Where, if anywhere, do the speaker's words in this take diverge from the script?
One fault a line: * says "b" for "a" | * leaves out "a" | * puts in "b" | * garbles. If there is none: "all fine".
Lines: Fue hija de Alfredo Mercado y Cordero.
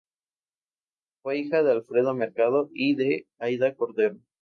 * puts in "de Aída"